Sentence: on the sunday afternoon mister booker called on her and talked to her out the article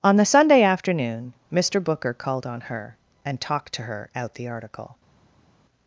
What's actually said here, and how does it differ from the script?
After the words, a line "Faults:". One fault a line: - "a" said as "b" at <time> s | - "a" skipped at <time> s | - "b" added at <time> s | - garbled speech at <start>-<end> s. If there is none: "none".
on the sunday afternoon mister booker called on her and talked to her out the article
Faults:
none